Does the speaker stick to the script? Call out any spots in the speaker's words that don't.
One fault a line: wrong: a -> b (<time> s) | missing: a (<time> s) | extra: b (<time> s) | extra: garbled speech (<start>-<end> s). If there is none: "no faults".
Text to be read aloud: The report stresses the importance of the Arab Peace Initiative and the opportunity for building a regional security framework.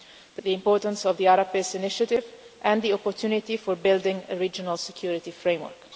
missing: report stresses (0.4 s)